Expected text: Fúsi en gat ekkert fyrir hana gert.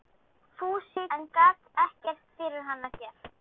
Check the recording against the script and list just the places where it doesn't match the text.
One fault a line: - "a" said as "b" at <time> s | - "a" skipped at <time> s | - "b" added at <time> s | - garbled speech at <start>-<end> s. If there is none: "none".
none